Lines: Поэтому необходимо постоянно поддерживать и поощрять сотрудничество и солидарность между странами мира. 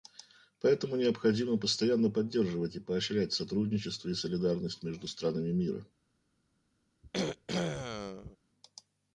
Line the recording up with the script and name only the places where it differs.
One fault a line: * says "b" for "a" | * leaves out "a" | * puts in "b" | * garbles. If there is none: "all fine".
all fine